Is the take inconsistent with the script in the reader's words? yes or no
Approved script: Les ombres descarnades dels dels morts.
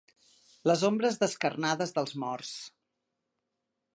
yes